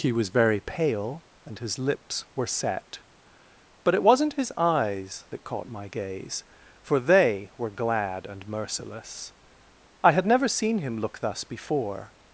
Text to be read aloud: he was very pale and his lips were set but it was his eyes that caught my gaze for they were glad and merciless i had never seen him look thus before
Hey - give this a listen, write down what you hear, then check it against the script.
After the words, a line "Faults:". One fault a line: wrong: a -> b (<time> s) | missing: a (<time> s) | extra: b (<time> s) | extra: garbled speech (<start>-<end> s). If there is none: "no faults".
he was very pale and his lips were set but it wasn't his eyes that caught my gaze for they were glad and merciless i had never seen him look thus before
Faults:
wrong: was -> wasn't (4.0 s)